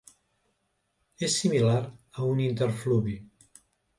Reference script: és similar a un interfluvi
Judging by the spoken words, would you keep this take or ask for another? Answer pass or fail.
pass